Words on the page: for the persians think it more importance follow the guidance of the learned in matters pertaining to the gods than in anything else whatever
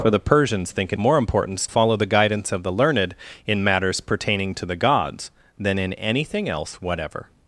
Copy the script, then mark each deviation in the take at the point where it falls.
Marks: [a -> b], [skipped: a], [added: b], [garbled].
for the persians think it more importance follow the guidance of the learned in matters pertaining to the gods than in anything else whatever